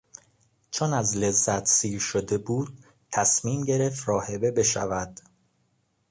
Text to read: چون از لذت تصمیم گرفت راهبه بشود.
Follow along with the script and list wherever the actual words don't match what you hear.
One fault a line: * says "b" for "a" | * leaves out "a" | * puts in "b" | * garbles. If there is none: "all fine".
* puts in "سیر شده بود"